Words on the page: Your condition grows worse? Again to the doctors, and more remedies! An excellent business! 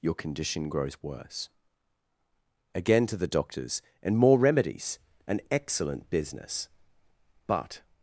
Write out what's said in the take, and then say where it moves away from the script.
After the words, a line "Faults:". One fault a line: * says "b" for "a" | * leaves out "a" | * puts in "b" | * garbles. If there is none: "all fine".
Your condition grows worse? Again to the doctors, and more remedies! An excellent business! "But
Faults:
* puts in "But"